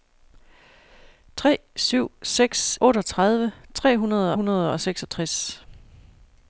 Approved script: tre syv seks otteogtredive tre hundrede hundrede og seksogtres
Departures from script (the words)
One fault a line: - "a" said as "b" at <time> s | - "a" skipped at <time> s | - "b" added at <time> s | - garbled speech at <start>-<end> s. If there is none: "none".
none